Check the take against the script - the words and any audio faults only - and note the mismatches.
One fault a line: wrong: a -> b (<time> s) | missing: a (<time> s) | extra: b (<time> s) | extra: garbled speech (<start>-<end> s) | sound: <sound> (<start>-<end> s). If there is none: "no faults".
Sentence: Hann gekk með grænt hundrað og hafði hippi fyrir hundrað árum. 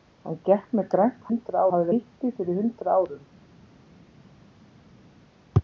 no faults